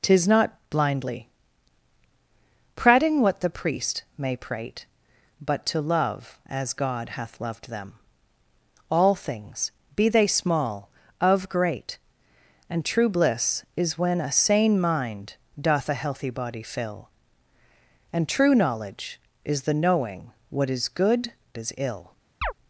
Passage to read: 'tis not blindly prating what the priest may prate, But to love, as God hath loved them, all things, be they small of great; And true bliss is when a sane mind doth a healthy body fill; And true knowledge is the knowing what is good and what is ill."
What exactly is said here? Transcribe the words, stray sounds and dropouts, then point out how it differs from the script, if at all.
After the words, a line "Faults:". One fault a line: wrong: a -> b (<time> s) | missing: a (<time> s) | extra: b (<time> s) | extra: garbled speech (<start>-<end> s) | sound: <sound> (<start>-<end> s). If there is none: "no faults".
'tis not blindly prating what the priest may prate, But to love, as God hath loved them, all things, be they small of great; And true bliss is when a sane mind doth a healthy body fill; And true knowledge is the knowing what is good is ill."
Faults:
missing: and what (21.3 s)
sound: chirp (22.4-22.5 s)